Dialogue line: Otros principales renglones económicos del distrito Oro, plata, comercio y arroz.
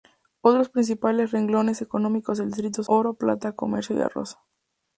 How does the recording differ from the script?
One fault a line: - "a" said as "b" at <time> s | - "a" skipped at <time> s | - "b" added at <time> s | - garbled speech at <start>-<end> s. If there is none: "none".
none